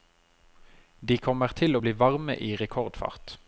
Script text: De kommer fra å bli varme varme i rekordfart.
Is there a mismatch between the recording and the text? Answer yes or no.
yes